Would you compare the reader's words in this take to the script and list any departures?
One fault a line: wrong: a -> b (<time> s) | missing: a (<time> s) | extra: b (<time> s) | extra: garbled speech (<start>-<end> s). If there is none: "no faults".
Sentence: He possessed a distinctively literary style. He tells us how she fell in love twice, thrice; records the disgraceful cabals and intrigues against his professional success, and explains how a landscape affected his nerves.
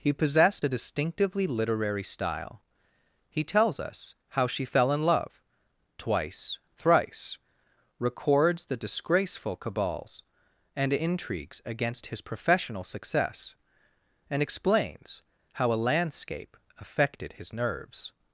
no faults